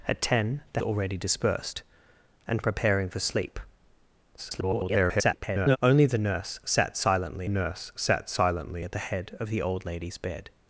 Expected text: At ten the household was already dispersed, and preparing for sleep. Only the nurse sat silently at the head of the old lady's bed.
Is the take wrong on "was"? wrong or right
wrong